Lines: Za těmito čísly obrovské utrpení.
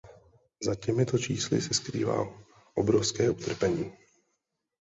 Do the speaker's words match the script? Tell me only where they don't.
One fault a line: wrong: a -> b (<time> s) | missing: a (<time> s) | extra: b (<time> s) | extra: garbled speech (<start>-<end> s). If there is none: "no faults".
extra: se skrývá (1.6 s)